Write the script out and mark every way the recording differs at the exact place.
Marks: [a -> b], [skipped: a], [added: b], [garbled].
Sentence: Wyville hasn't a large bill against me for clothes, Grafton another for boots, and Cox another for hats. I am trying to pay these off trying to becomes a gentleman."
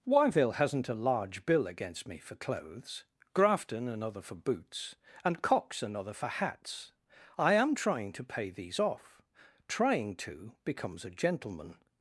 Wyville hasn't a large bill against me for clothes, Grafton another for boots, and Cox another for hats. I am trying to pay these off trying to becomes a gentleman."